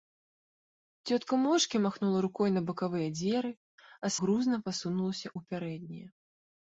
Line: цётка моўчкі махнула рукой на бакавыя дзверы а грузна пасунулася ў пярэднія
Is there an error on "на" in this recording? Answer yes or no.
no